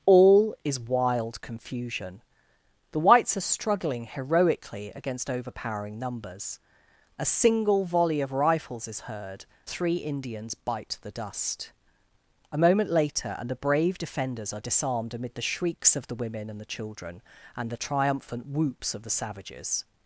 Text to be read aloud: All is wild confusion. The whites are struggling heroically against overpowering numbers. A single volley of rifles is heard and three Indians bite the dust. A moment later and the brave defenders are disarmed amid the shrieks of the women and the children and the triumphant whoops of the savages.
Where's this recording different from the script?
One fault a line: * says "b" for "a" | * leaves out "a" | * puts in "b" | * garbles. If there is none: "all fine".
* leaves out "and"